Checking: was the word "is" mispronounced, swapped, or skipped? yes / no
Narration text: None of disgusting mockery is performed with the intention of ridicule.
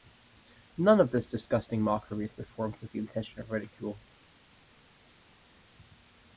no